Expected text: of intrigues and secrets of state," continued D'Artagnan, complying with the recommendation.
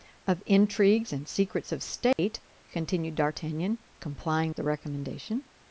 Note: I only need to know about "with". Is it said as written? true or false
false